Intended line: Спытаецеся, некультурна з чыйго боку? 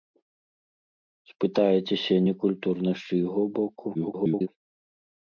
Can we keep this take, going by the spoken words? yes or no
no